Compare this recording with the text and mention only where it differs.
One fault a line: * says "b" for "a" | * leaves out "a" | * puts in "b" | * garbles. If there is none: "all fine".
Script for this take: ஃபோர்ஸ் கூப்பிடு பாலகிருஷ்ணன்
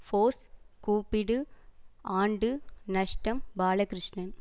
* puts in "ஆண்டு நஷ்டம்"